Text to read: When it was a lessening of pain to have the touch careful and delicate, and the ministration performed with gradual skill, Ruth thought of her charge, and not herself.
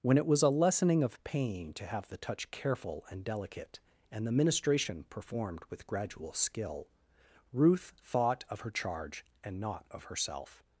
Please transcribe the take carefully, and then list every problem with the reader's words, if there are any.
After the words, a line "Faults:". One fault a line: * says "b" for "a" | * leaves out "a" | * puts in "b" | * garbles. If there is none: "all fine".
When it was a lessening of pain to have the touch careful and delicate, and the ministration performed with gradual skill, Ruth thought of her charge, and not of herself.
Faults:
* puts in "of"